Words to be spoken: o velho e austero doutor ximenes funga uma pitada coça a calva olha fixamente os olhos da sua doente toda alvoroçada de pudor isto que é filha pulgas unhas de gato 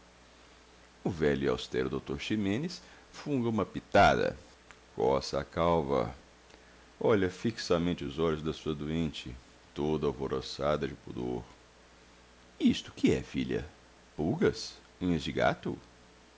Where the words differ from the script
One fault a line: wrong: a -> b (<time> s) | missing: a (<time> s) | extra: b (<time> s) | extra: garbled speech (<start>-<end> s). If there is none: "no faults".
no faults